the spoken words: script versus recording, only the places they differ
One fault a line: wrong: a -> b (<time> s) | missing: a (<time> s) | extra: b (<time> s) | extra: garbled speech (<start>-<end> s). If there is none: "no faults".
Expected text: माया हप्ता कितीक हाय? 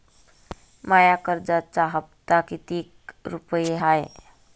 extra: कर्जाचा (1.2 s)
extra: रुपये (3.3 s)